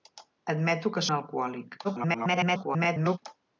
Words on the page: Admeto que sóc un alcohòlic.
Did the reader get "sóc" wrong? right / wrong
wrong